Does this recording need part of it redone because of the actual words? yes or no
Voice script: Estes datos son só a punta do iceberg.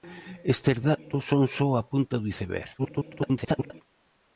yes